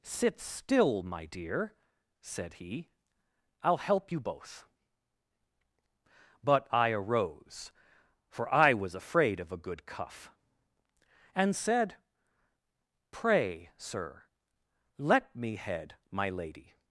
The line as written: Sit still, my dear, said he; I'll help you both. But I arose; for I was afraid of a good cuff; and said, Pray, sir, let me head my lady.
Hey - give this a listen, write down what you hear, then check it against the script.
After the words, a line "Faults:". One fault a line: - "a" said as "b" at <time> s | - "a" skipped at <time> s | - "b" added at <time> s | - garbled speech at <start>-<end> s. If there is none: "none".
Sit still, my dear, said he; I'll help you both. But I arose; for I was afraid of a good cuff; and said, Pray, sir, let me head my lady.
Faults:
none